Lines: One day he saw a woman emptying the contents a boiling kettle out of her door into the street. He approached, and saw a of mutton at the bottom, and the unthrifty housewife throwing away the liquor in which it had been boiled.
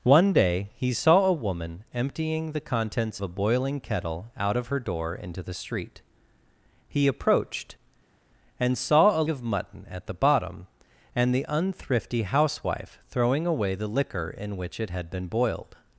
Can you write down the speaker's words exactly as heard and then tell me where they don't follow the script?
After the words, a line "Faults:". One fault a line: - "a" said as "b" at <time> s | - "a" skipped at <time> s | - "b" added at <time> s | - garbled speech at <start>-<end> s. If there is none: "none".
One day he saw a woman emptying the contents a boiling kettle out of her door into the street. He approached, and saw a of mutton at the bottom, and the unthrifty housewife throwing away the liquor in which it had been boiled.
Faults:
none